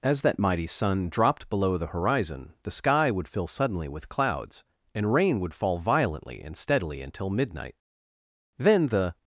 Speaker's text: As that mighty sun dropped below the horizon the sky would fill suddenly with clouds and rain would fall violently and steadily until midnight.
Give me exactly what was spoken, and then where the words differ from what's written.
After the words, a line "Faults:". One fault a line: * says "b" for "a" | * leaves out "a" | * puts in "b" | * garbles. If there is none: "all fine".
As that mighty sun dropped below the horizon the sky would fill suddenly with clouds and rain would fall violently and steadily until midnight. Then the
Faults:
* puts in "Then the"